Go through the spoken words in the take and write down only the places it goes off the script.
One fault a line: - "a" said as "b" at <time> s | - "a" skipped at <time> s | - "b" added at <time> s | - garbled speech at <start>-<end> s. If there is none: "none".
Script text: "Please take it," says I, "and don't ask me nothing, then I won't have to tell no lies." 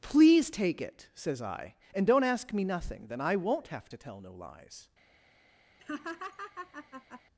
none